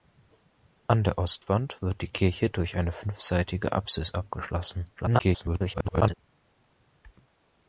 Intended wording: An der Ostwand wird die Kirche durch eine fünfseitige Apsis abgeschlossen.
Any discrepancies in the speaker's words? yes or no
yes